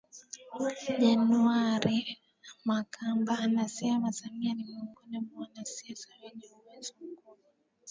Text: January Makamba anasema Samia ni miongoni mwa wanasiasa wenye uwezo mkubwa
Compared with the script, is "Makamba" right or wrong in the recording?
right